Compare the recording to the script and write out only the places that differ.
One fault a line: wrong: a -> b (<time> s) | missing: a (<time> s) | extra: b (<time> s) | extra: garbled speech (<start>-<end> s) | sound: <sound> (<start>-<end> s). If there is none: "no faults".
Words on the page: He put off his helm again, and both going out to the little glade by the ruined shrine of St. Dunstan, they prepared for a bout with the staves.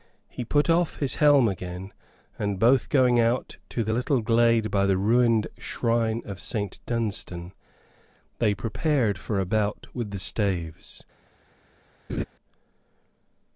sound: laugh (12.1-12.2 s)